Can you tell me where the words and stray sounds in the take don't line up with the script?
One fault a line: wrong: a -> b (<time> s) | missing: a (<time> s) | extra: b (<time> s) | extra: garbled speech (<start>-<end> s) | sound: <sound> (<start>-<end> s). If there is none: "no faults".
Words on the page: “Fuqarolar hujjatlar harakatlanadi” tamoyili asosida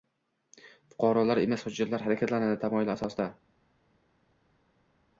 extra: emas (1.4 s)